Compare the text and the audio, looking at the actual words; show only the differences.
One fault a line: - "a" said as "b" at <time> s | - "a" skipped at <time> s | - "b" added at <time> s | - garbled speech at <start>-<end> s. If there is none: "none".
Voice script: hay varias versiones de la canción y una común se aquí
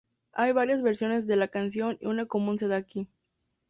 - "da" added at 2.7 s